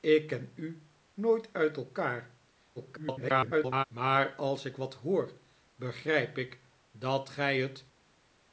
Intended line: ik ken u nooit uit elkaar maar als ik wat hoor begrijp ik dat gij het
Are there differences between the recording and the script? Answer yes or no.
yes